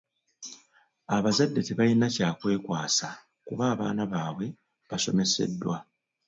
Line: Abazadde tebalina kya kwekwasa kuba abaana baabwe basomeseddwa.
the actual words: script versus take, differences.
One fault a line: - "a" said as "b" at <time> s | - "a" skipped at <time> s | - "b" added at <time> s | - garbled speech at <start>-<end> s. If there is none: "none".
none